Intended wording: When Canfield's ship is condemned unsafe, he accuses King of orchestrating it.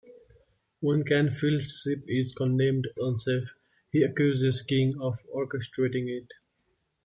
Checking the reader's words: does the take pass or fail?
pass